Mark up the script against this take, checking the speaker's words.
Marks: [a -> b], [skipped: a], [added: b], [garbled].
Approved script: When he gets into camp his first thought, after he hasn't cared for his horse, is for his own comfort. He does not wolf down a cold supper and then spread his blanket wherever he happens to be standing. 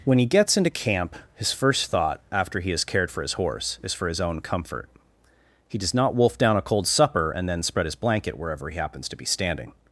When he gets into camp his first thought, after he [hasn't -> has] cared for his horse, is for his own comfort. He does not wolf down a cold supper and then spread his blanket wherever he happens to be standing.